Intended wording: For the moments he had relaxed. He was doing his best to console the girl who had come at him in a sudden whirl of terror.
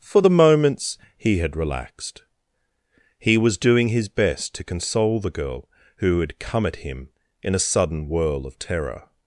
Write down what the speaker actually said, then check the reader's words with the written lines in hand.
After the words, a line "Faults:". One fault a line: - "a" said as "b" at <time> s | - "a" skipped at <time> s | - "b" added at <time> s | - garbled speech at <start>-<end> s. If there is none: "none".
For the moments he had relaxed. He was doing his best to console the girl who had come at him in a sudden whirl of terror.
Faults:
none